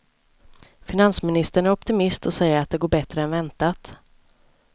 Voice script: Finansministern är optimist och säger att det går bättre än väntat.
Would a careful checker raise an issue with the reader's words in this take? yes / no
no